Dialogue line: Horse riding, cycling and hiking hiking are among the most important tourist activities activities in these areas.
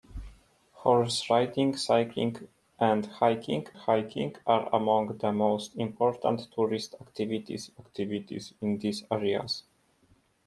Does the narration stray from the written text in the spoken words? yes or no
no